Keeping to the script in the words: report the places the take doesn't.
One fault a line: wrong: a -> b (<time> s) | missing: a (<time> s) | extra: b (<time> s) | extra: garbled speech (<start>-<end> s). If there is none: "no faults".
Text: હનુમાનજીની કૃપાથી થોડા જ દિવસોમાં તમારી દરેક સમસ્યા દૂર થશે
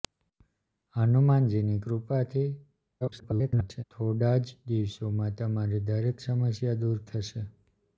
extra: garbled speech (3.0-3.8 s)